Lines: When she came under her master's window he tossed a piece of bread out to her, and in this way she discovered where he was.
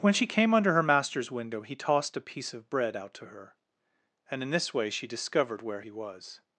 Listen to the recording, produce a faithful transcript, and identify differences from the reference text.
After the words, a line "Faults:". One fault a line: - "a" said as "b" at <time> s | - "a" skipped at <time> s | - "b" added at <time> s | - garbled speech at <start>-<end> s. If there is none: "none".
When she came under her master's window he tossed a piece of bread out to her, and in this way she discovered where he was.
Faults:
none